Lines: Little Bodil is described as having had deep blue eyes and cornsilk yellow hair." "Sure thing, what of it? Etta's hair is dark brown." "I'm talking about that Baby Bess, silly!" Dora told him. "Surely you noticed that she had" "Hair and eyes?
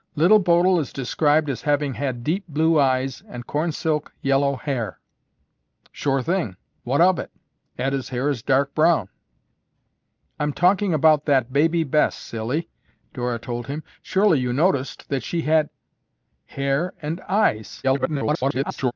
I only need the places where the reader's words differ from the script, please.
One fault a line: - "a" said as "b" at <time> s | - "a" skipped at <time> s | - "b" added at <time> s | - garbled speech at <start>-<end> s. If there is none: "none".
- garbled speech at 17.8-18.9 s